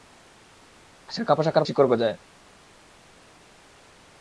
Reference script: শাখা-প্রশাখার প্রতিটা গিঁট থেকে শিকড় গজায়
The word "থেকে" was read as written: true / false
false